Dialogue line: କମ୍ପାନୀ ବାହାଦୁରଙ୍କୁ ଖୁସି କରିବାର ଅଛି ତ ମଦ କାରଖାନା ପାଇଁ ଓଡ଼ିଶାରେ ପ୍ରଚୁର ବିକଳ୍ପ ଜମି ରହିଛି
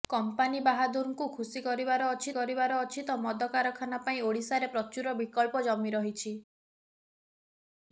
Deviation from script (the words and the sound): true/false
true